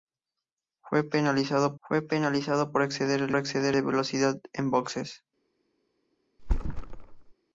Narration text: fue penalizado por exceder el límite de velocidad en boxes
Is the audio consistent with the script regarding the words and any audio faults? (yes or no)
no